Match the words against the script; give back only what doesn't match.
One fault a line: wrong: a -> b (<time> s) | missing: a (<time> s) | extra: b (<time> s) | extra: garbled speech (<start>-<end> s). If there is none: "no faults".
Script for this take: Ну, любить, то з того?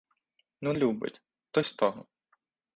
no faults